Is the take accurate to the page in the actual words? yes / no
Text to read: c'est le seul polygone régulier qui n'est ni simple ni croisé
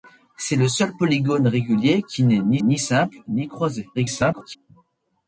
no